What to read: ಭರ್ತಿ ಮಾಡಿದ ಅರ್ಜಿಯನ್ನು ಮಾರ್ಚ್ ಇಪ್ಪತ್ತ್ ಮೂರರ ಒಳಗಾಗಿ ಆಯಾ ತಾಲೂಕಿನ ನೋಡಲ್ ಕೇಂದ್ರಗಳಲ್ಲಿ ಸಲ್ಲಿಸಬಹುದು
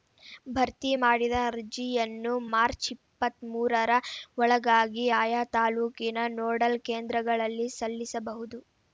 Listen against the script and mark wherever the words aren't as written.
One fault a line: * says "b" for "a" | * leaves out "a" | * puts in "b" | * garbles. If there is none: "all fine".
all fine